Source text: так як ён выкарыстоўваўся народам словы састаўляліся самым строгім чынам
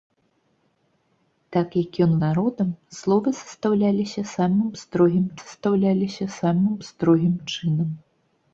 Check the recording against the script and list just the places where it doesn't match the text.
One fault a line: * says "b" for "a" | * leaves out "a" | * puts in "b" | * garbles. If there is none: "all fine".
* leaves out "выкарыстоўваўся"
* puts in "састаўляліся самым строгім"